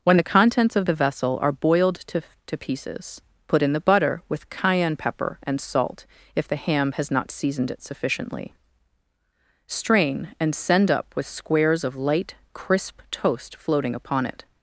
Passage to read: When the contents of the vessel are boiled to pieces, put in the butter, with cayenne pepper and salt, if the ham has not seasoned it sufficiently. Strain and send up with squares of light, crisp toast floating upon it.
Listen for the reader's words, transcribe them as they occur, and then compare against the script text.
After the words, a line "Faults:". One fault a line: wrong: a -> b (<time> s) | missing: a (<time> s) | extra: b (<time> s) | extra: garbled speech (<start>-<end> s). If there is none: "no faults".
When the contents of the vessel are boiled to to pieces, put in the butter, with cayenne pepper and salt, if the ham has not seasoned it sufficiently. Strain and send up with squares of light, crisp toast floating upon it.
Faults:
extra: to (2.5 s)